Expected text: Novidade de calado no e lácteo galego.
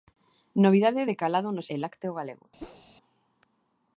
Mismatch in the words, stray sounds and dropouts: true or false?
true